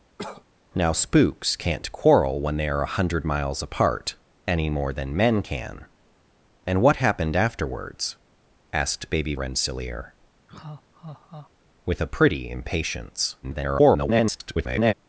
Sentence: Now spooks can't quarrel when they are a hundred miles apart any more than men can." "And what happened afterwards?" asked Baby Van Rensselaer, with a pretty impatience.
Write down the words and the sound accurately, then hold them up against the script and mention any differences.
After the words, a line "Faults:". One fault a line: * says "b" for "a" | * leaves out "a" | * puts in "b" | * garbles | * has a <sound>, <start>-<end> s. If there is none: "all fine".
Now spooks can't quarrel when they are a hundred miles apart any more than men can." "And what happened afterwards?" asked Baby Rensselaer, with a pretty impatience. [garbled]
Faults:
* has a cough, 0.2-0.4 s
* leaves out "Van"
* has a laugh, 10.5-11.5 s
* garbles